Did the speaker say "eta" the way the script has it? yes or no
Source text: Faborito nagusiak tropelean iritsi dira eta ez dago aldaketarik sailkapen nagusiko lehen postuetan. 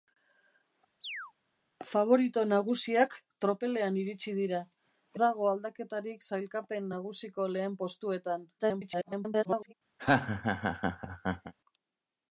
no